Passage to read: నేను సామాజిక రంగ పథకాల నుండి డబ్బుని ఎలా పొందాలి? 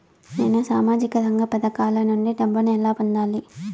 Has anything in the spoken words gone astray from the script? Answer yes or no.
no